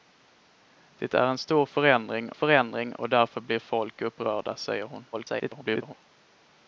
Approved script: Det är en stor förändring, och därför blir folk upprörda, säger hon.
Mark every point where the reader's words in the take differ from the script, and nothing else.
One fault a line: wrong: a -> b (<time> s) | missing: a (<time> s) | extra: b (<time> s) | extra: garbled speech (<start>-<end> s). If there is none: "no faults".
extra: förändring (2.3 s)
extra: garbled speech (5.1-5.9 s)